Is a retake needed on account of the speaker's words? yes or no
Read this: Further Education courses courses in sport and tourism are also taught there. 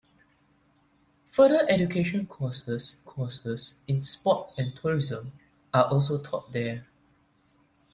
no